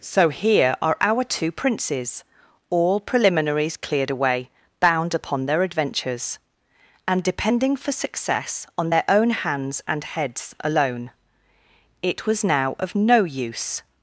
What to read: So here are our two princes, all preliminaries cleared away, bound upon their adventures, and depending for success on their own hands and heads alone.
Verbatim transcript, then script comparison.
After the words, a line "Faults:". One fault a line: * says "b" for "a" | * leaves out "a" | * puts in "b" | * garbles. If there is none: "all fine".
So here are our two princes, all preliminaries cleared away, bound upon their adventures, and depending for success on their own hands and heads alone. It was now of no use
Faults:
* puts in "It was now of no use"